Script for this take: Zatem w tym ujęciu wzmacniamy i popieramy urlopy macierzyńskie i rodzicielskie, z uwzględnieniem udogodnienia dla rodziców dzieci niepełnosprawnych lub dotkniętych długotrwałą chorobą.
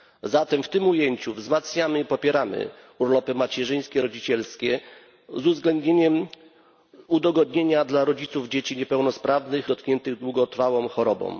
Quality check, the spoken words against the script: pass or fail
fail